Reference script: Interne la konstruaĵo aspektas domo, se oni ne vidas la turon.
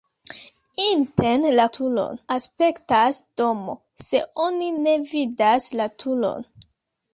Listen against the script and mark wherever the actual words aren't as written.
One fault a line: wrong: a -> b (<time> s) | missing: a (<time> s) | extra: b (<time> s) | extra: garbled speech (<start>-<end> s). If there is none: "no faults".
wrong: konstruaĵo -> turon (1.8 s)